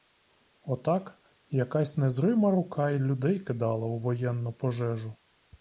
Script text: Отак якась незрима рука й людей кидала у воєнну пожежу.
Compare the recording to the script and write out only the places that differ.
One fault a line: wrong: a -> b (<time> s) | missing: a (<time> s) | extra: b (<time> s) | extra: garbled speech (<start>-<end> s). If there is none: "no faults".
no faults